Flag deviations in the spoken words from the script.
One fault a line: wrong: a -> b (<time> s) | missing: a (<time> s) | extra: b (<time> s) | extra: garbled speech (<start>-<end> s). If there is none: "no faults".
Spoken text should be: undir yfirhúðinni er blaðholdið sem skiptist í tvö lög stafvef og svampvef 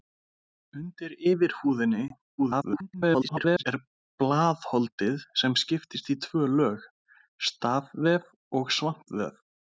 extra: garbled speech (2.4-3.6 s)